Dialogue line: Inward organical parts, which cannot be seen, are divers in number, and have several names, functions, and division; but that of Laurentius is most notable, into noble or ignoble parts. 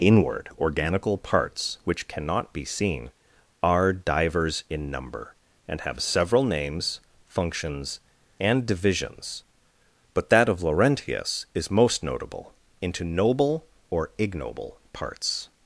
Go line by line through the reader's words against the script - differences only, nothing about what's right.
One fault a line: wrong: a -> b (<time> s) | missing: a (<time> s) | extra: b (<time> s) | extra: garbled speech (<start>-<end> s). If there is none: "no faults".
wrong: division -> divisions (8.7 s)